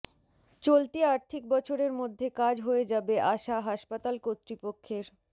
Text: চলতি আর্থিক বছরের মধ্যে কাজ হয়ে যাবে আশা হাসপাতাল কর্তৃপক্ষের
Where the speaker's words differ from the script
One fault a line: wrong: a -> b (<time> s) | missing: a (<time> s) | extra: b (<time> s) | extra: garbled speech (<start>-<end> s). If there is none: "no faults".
no faults